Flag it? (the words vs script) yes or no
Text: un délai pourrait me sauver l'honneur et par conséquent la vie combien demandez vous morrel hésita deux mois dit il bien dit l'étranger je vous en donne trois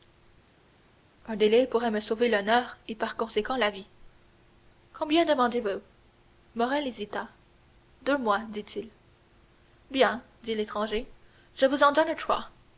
no